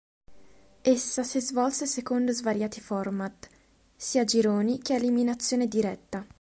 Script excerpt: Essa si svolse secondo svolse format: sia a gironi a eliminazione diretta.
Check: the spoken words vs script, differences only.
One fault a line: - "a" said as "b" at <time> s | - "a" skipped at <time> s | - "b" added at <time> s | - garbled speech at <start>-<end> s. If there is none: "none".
- "svolse" said as "svariati" at 2.3 s
- "che" added at 4.8 s